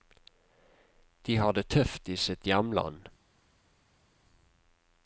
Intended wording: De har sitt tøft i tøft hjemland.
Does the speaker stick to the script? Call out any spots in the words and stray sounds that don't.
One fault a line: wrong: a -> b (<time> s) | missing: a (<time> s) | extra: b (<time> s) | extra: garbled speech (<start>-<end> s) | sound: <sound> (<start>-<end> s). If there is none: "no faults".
wrong: sitt -> det (1.5 s)
wrong: tøft -> sitt (2.2 s)